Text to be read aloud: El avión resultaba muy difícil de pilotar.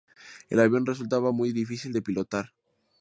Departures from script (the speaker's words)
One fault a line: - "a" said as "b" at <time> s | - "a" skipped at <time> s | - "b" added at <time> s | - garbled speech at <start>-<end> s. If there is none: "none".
none